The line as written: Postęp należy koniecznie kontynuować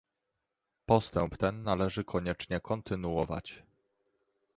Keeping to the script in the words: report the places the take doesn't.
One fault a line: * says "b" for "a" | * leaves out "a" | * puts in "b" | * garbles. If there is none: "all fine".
* puts in "ten"